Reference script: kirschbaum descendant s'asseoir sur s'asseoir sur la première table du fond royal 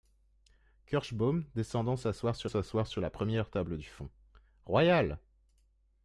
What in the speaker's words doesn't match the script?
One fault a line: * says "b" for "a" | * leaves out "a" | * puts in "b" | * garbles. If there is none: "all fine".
all fine